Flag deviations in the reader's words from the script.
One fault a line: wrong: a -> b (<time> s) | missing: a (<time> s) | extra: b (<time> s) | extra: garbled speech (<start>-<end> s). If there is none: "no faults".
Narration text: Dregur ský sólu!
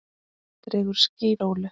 no faults